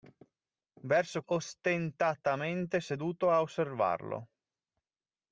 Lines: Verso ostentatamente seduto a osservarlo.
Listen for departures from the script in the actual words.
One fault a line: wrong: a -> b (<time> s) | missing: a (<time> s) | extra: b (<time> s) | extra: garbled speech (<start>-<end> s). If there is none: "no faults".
no faults